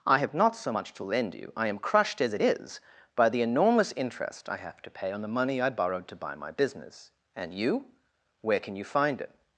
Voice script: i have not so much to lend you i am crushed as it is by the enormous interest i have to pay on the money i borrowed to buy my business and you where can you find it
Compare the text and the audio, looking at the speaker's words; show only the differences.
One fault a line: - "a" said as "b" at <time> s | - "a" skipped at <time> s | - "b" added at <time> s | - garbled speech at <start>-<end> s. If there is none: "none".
none